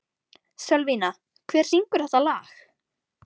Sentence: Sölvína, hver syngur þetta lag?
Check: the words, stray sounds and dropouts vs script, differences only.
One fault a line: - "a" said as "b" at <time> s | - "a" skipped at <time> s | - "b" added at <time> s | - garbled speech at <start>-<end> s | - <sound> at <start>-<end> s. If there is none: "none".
none